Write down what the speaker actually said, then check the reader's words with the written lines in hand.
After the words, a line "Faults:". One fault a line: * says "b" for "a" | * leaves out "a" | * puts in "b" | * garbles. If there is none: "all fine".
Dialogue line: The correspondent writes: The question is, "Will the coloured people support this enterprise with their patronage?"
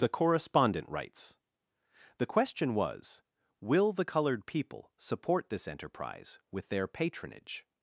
The correspondent writes: The question was, "Will the coloured people support this enterprise with their patronage?"
Faults:
* says "was" for "is"